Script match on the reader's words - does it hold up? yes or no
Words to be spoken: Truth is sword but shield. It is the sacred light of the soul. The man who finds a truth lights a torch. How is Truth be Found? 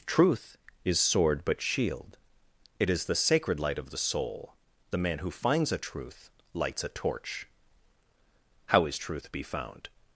yes